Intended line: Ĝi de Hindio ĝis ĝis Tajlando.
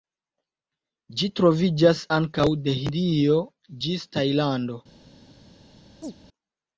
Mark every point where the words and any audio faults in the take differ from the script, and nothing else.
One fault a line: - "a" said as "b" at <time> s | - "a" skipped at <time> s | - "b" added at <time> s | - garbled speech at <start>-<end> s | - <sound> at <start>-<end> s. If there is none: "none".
- "troviĝas ankaŭ" added at 1.4 s
- "ĝis" skipped at 4.0 s
- chirp at 6.0-6.1 s